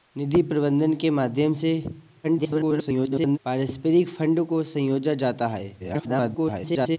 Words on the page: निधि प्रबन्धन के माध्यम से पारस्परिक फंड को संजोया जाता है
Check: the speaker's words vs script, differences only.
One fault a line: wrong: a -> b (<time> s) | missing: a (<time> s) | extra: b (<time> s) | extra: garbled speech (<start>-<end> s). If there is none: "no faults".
extra: garbled speech (2.2-3.4 s)
extra: garbled speech (5.8-7.0 s)